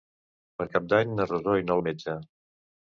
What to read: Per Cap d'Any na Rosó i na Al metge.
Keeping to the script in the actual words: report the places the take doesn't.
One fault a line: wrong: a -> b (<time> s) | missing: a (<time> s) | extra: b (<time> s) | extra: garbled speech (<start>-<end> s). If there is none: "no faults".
no faults